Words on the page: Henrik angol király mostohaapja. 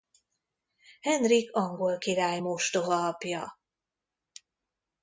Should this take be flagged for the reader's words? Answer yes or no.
no